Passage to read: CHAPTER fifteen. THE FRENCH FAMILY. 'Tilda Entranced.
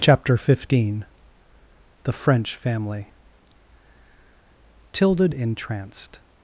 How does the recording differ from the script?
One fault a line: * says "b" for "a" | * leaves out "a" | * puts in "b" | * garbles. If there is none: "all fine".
all fine